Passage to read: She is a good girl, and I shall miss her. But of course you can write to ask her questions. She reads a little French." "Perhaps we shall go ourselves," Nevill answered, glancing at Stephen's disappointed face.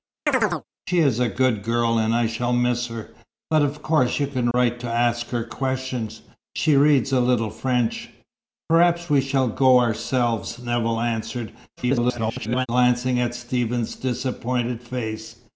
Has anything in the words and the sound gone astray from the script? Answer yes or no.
yes